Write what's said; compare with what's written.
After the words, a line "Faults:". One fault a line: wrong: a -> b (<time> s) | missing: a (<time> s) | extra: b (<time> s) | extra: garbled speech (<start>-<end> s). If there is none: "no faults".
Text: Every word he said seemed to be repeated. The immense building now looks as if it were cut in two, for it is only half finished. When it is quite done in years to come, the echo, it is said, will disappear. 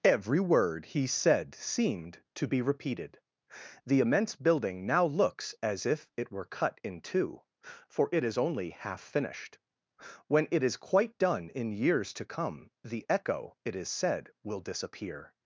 Every word he said seemed to be repeated. The immense building now looks as if it were cut in two, for it is only half finished. When it is quite done in years to come, the echo, it is said, will disappear.
Faults:
no faults